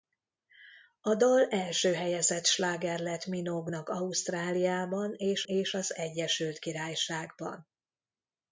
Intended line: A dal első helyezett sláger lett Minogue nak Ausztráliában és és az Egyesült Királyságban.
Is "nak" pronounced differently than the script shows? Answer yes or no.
no